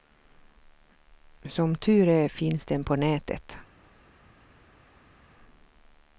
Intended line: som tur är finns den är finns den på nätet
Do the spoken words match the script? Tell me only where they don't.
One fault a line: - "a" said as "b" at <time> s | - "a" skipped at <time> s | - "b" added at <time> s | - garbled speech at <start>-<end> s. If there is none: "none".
- "är finns den" skipped at 2.8 s